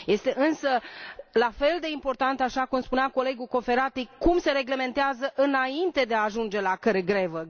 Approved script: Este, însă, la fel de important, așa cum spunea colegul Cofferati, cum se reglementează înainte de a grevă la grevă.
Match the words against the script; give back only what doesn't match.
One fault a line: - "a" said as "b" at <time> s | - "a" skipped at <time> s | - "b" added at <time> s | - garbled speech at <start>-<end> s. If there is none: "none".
- "grevă" said as "ajunge" at 6.2 s